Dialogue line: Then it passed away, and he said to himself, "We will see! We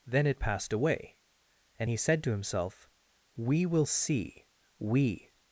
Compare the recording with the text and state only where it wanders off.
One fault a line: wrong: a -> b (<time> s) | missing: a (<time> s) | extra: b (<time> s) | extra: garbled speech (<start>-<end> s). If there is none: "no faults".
no faults